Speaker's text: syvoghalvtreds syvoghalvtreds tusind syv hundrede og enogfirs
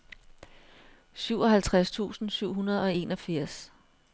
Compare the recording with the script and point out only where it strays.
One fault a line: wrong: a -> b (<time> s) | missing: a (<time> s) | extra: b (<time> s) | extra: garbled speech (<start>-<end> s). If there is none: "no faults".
missing: syvoghalvtreds (1.9 s)